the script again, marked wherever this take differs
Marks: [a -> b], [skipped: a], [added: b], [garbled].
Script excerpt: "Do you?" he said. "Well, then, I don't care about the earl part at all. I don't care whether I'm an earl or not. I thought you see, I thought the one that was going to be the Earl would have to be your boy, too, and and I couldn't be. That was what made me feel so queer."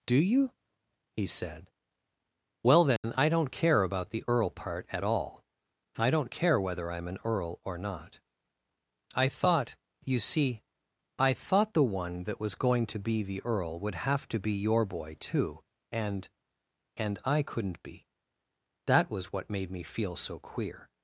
"Do you?" he said. "Well, then, I don't care about the earl part at all. I don't care whether I'm an earl or not. I thought you see, I thought the one that was going to be the Earl would have to be your boy, too, and and I couldn't be. That was what made me feel so queer."